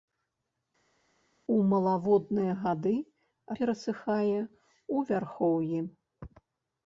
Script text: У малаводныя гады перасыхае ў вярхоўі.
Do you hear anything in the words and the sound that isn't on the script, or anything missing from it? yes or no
no